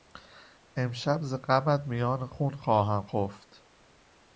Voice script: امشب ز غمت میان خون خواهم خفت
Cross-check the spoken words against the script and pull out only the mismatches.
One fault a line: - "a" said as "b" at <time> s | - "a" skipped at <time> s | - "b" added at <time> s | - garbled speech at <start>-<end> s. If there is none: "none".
none